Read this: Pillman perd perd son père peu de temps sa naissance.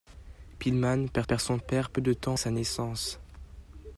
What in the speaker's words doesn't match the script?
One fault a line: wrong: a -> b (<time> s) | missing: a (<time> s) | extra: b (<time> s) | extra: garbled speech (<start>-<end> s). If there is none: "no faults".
no faults